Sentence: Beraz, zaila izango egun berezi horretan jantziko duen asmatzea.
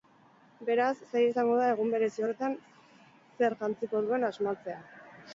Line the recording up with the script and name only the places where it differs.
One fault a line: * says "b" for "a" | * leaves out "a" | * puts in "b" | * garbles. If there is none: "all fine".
* puts in "da"
* puts in "zer"